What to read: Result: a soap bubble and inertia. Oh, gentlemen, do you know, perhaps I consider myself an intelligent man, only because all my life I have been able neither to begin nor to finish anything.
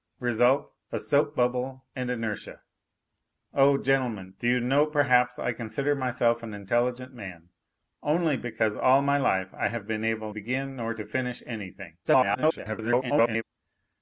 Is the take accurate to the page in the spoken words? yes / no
no